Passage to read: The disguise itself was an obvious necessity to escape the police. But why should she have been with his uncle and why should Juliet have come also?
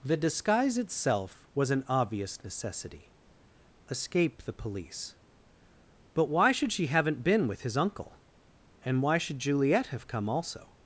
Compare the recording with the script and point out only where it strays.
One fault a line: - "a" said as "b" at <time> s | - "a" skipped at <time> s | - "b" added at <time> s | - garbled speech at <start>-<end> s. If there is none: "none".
- "to" skipped at 3.1 s
- "have" said as "haven't" at 6.9 s